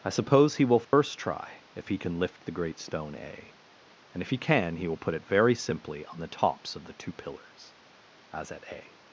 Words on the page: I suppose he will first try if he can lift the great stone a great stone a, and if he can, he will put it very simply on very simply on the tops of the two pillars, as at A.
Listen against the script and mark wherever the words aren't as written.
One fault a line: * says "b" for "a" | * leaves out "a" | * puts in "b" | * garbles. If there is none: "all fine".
* leaves out "great stone a"
* leaves out "very simply on"